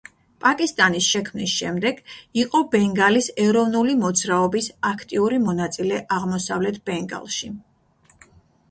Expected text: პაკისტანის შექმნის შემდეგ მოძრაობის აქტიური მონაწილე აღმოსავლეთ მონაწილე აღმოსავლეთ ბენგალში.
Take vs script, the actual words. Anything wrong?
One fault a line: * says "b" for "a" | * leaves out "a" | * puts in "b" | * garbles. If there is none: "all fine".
* puts in "იყო ბენგალის ეროვნული"
* leaves out "მონაწილე აღმოსავლეთ"